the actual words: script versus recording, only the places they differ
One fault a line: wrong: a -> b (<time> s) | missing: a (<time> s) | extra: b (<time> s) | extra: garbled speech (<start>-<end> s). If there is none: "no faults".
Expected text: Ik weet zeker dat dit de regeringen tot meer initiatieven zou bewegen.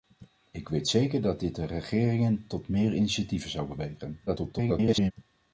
extra: garbled speech (4.3-5.1 s)